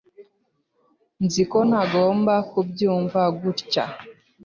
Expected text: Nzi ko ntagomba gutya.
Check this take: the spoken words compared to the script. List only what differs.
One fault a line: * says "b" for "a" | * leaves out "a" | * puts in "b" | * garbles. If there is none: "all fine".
* puts in "kubyumva"